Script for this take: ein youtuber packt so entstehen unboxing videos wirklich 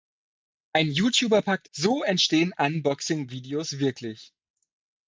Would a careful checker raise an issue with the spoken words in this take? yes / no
no